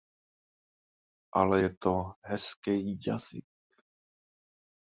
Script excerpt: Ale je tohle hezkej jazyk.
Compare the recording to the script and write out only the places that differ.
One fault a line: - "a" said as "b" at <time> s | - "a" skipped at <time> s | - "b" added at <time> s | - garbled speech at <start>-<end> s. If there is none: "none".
- "tohle" said as "to" at 1.8 s